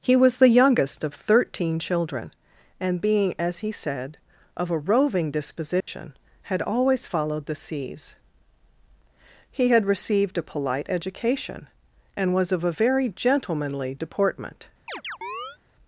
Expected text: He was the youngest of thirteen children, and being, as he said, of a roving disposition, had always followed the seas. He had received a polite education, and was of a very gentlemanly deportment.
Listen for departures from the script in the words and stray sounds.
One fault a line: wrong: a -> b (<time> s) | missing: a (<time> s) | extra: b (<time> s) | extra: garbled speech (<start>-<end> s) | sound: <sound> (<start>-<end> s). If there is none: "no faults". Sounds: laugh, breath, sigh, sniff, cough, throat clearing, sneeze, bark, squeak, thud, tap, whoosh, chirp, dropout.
sound: dropout (5.8-5.9 s)
sound: chirp (14.9-15.6 s)